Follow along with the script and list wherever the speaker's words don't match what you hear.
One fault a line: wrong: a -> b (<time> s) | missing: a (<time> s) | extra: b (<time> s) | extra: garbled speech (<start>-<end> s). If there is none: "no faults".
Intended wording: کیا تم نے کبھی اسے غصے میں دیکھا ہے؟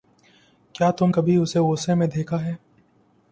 missing: نے (1.1 s)